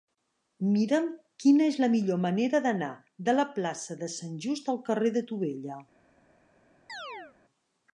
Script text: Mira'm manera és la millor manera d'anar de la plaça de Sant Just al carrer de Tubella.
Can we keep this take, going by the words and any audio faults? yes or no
no